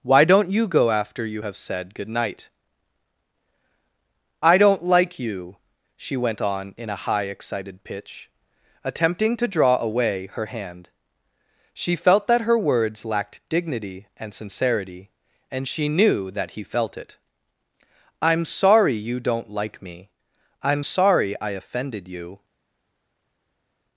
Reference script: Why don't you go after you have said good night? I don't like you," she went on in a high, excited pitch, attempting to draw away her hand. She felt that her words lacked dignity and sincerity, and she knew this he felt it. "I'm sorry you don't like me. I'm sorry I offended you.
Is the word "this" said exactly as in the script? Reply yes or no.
no